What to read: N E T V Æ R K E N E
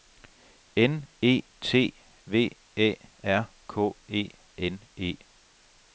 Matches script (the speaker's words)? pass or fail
pass